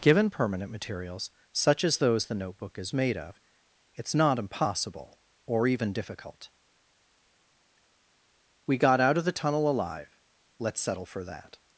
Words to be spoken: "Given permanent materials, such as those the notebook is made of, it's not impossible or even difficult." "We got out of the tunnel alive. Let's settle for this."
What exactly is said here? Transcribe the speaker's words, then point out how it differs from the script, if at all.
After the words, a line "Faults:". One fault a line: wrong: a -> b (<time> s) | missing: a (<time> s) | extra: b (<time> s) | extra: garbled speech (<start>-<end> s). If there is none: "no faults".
"Given permanent materials, such as those the notebook is made of, it's not impossible or even difficult." "We got out of the tunnel alive. Let's settle for that."
Faults:
wrong: this -> that (11.2 s)